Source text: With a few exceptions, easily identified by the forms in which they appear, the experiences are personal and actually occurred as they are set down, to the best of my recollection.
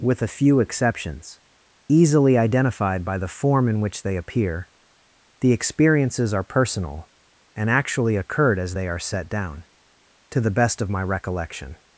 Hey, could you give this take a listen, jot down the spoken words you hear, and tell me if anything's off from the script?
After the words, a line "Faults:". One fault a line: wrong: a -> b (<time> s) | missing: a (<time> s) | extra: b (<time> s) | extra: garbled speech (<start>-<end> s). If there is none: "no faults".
With a few exceptions, easily identified by the form in which they appear, the experiences are personal and actually occurred as they are set down, to the best of my recollection.
Faults:
wrong: forms -> form (3.3 s)